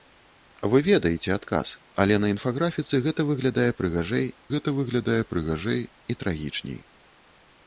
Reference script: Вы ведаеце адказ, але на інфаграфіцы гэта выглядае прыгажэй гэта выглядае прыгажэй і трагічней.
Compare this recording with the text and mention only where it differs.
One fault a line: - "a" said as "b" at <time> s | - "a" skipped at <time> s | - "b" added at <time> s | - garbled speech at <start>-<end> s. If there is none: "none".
none